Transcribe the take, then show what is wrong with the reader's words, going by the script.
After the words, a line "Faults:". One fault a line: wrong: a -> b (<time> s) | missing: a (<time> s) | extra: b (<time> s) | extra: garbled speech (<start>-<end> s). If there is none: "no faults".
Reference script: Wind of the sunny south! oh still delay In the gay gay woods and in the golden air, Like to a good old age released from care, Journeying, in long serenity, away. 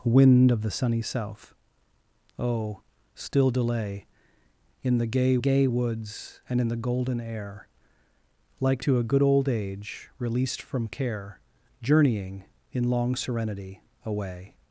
Wind of the sunny south! oh still delay In the gay gay woods and in the golden air, Like to a good old age released from care, Journeying, in long serenity, away.
Faults:
no faults